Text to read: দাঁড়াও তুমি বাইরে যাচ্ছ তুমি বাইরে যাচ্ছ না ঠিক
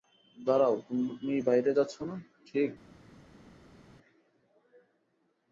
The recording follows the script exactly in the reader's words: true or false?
false